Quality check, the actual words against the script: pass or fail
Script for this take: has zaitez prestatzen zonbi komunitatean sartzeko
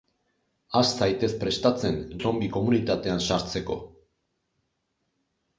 pass